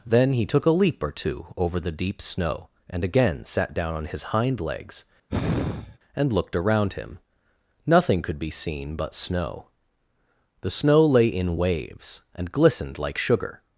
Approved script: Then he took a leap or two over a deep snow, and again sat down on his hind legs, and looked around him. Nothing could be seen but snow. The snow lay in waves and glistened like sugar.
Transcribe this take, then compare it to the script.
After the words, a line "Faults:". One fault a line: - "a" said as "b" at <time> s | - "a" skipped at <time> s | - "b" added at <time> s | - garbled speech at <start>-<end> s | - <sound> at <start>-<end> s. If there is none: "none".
Then he took a leap or two over the deep snow, and again sat down on his hind legs, and looked around him. Nothing could be seen but snow. The snow lay in waves and glistened like sugar.
Faults:
- "a" said as "the" at 1.8 s
- sigh at 5.3-6.0 s